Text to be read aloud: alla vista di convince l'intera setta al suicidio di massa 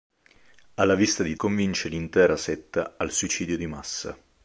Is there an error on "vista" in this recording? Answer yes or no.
no